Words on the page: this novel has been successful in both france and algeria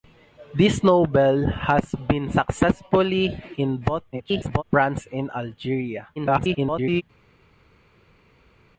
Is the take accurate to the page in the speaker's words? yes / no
no